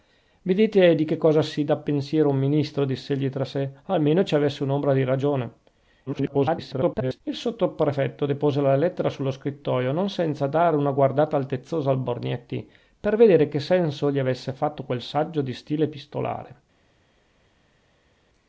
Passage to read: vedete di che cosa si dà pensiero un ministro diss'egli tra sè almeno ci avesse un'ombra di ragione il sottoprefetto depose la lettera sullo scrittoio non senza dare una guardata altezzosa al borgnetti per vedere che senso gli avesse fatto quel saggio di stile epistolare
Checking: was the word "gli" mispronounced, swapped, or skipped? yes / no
no